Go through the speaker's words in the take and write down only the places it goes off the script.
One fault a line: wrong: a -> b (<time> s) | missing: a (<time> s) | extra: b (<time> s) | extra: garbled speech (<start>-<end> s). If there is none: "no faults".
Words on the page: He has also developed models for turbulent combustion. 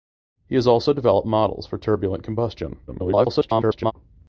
extra: garbled speech (2.9-3.9 s)